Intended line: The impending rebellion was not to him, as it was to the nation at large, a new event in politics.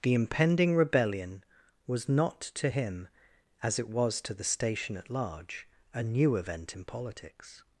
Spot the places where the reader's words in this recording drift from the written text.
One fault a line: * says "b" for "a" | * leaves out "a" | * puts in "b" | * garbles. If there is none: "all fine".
* says "station" for "nation"